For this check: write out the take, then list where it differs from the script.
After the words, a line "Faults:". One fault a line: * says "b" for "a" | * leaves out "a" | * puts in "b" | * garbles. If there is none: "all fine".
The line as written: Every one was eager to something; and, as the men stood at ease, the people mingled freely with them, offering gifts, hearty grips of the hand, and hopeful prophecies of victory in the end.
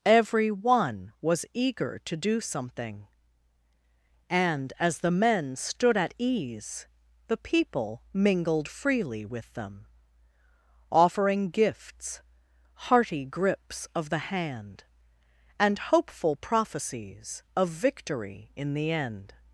Every one was eager to do something; and, as the men stood at ease, the people mingled freely with them, offering gifts, hearty grips of the hand, and hopeful prophecies of victory in the end.
Faults:
* puts in "do"